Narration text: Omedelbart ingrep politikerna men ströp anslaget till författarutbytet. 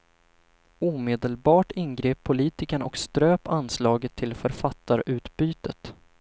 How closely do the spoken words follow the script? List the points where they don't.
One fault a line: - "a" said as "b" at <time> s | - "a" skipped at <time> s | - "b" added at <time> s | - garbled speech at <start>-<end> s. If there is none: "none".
- "men" said as "och" at 2.8 s